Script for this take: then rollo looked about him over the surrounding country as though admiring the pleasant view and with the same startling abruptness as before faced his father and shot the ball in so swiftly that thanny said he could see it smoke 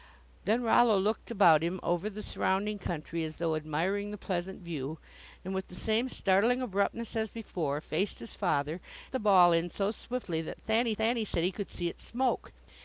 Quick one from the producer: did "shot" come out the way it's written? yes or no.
no